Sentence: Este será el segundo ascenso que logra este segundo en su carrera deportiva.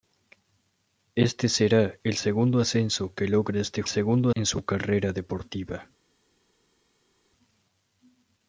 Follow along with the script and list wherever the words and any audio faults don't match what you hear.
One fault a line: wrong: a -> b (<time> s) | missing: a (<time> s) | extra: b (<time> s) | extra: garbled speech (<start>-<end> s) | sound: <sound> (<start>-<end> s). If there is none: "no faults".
no faults